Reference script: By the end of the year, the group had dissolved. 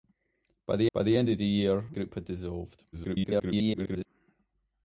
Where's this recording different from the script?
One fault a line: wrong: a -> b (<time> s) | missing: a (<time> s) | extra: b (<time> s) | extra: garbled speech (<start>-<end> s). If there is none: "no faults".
extra: by the (0.9 s)
missing: the (1.9 s)
extra: garbled speech (2.9-4.1 s)